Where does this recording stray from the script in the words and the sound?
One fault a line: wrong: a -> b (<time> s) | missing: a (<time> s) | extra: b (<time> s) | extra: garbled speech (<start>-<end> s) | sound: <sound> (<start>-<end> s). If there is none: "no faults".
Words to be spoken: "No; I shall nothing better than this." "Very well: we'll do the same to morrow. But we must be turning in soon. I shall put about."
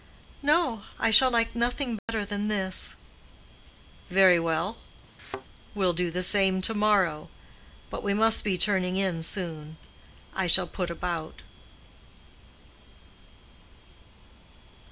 extra: like (1.3 s)
sound: dropout (2.0-2.1 s)
sound: thud (5.2-5.5 s)